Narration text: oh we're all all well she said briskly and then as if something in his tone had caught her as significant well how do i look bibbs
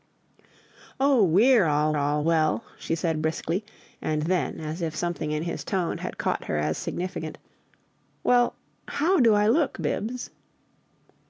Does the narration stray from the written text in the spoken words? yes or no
no